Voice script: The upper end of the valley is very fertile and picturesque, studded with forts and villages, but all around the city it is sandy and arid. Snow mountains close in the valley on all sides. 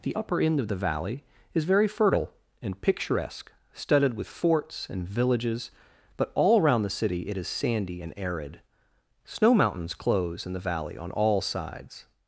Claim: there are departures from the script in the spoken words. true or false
false